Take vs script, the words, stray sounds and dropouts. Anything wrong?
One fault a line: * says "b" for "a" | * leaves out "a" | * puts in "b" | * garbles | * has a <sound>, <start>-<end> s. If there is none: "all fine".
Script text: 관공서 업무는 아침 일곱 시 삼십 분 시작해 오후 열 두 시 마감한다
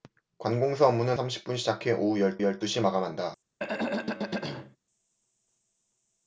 * leaves out "아침 일곱 시"
* puts in "열"
* has a throat clearing, 3.6-4.8 s